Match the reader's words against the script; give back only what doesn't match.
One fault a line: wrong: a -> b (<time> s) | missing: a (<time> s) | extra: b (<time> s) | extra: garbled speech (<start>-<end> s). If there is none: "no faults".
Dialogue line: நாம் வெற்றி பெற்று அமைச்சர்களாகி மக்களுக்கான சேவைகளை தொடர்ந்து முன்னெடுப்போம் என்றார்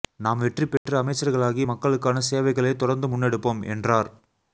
no faults